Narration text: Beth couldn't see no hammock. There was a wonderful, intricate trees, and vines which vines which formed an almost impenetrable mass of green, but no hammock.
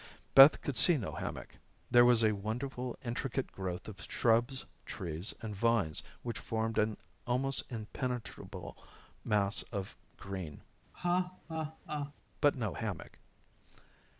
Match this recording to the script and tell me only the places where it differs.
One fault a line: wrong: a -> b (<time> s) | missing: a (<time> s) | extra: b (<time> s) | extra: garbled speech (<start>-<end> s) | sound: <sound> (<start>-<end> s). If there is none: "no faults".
wrong: couldn't -> could (0.6 s)
extra: growth of shrubs (3.5 s)
missing: vines which (6.4 s)
sound: laugh (10.9-12.1 s)